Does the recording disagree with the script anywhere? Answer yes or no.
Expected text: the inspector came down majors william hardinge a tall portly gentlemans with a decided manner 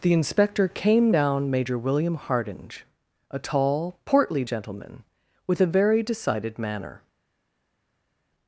yes